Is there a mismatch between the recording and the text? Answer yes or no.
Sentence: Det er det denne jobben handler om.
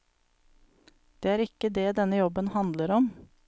yes